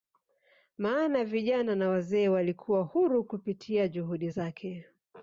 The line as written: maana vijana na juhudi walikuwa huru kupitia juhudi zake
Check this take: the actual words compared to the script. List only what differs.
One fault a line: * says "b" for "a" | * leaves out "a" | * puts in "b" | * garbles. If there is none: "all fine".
* says "wazee" for "juhudi"